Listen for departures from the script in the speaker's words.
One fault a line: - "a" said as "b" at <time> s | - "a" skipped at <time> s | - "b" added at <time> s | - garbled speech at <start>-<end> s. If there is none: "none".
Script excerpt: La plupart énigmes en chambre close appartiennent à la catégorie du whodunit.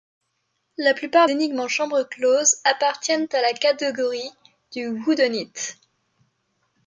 none